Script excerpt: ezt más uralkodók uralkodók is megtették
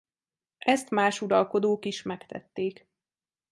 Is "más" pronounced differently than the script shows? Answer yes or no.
no